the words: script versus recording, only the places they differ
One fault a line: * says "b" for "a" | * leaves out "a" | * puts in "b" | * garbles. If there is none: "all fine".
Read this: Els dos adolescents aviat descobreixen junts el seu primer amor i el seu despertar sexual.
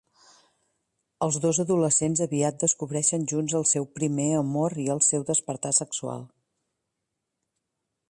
all fine